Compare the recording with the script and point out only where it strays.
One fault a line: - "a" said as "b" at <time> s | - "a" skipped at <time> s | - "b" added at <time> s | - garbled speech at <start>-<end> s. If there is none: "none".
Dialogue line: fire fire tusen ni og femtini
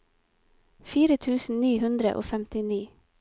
- "fire" skipped at 1.2 s
- "hundre" added at 1.8 s